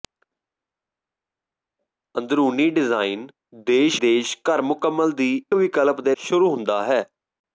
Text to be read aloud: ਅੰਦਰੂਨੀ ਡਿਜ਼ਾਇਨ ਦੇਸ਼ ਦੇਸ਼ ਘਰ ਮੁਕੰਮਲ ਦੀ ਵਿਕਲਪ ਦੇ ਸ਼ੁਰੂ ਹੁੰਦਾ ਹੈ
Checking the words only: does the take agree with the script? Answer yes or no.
yes